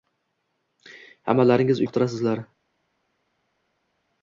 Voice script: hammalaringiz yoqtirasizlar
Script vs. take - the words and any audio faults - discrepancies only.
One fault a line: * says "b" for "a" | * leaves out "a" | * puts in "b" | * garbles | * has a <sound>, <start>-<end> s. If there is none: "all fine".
all fine